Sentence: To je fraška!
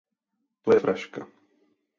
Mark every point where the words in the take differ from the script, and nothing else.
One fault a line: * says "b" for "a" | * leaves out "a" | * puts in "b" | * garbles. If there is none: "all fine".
all fine